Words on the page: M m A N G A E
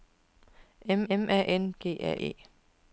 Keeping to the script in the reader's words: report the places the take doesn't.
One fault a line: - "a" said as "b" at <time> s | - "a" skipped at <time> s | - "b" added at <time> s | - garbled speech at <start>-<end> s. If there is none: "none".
none